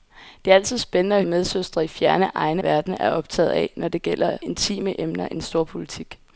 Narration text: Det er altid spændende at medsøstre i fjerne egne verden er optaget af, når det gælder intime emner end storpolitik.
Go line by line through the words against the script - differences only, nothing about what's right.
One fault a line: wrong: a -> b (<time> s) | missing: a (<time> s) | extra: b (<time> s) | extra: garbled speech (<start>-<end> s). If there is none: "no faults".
no faults